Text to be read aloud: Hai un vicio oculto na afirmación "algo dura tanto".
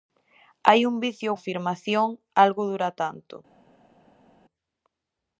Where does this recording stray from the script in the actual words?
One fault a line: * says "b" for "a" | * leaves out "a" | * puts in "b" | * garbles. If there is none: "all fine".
* leaves out "oculto na"